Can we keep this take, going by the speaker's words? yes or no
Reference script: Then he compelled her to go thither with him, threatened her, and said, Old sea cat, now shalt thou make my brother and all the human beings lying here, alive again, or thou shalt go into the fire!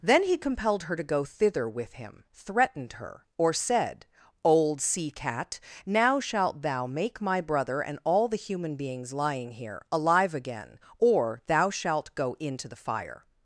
no